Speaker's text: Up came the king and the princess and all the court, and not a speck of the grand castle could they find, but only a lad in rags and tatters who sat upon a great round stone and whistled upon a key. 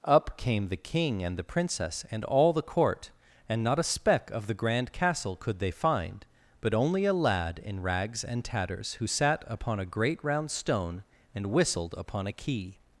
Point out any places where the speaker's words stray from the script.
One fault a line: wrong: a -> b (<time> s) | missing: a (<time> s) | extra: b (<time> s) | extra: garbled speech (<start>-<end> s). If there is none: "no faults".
no faults